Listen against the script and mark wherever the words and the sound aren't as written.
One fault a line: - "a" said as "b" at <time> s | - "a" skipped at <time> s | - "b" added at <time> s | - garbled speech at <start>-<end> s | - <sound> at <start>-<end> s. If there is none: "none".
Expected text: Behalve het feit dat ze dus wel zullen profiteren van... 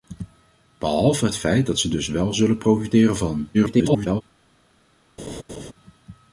- garbled speech at 3.5-4.2 s
- laugh at 5.2-5.7 s